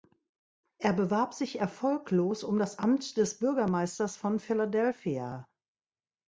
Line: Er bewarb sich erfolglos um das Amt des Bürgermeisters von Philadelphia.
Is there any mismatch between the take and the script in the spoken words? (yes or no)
no